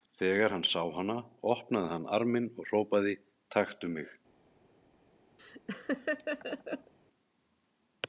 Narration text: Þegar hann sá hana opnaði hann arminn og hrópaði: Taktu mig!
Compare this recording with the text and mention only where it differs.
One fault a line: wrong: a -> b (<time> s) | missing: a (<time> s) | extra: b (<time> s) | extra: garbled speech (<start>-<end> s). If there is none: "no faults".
no faults